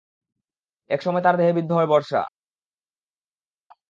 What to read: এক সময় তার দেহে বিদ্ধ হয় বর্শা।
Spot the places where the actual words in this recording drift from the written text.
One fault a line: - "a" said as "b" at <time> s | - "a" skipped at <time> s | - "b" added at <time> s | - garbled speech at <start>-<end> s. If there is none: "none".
none